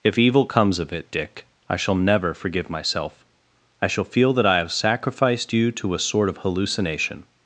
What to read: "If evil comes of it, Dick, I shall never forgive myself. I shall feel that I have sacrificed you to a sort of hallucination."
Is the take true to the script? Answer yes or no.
yes